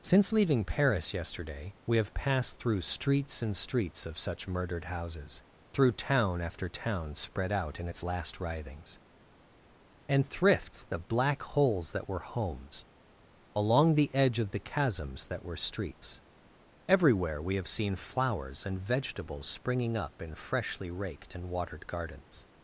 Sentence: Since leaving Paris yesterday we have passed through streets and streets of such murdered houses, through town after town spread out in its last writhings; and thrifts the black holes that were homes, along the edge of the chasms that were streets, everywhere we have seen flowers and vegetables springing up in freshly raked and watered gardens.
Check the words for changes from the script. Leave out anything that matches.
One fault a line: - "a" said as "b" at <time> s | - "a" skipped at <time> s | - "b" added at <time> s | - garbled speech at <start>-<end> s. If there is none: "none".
none